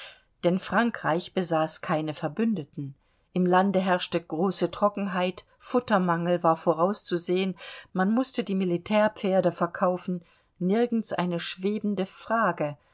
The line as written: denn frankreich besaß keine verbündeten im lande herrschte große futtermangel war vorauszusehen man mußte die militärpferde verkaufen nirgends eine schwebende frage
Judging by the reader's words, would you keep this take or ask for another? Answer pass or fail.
fail